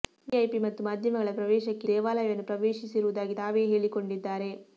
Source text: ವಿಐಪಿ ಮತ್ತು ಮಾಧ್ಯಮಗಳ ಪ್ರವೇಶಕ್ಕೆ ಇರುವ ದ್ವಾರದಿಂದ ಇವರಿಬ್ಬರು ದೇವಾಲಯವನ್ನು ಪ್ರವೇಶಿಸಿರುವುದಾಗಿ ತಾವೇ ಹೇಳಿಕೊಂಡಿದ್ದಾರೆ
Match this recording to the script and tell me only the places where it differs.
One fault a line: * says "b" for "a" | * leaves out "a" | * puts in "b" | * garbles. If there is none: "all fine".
* leaves out "ಇರುವ ದ್ವಾರದಿಂದ ಇವರಿಬ್ಬರು"